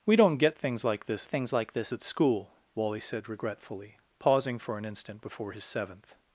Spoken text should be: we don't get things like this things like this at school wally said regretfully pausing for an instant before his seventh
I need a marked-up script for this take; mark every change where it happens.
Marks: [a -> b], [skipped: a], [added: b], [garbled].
we don't get things like this things like this at school wally said regretfully pausing for an instant before his seventh